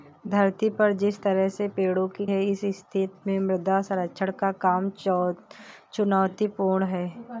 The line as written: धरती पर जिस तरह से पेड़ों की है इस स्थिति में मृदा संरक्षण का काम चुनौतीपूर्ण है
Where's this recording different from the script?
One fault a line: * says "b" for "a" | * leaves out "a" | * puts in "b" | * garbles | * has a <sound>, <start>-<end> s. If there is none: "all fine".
all fine